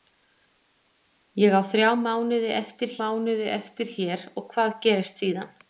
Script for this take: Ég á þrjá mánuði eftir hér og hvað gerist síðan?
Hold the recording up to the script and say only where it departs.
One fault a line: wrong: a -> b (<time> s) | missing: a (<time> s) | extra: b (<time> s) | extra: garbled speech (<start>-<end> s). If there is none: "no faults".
extra: mánuði eftir (3.0 s)